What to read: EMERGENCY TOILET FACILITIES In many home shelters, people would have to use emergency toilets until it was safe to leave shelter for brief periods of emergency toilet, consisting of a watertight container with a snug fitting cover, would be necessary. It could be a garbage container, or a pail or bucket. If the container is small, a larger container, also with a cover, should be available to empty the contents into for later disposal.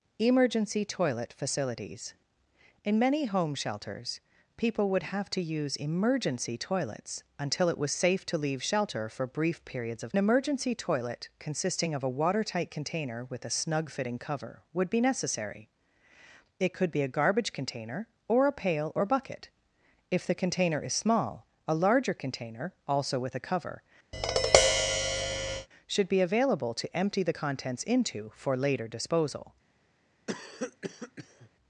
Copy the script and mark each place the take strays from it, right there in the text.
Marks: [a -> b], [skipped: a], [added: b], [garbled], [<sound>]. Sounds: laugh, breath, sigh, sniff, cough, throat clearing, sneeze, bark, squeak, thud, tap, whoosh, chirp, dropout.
EMERGENCY TOILET FACILITIES In many home shelters, people would have to use emergency toilets until it was safe to leave shelter for brief periods of emergency toilet, consisting of a watertight container with a snug fitting cover, would be necessary. It could be a garbage container, or a pail or bucket. If the container is small, a larger container, also with a cover, [tap] should be available to empty the contents into for later disposal. [cough]